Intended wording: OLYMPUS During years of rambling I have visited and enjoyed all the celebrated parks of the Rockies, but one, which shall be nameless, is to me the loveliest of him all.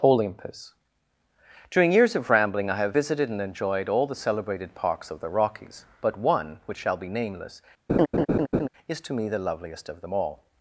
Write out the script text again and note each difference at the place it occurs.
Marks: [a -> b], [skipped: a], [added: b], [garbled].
OLYMPUS During years of rambling I have visited and enjoyed all the celebrated parks of the Rockies, but one, which shall be nameless, is to me the loveliest of [him -> them] all.